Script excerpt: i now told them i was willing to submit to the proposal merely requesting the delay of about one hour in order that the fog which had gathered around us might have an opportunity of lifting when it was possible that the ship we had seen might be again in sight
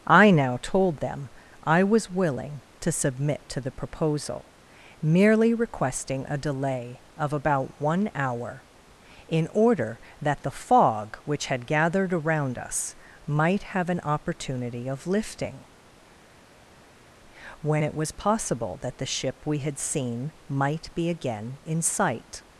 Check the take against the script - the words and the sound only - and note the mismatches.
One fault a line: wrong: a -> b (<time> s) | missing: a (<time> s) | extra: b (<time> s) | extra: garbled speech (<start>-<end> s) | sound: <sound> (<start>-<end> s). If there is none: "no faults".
wrong: the -> a (6.3 s)